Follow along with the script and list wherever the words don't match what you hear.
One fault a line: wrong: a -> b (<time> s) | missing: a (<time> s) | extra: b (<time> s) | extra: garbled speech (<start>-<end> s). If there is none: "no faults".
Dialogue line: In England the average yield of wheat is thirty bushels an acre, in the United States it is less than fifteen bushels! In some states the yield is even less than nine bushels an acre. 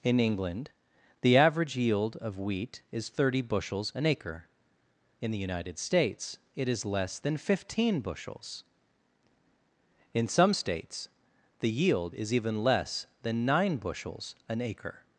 no faults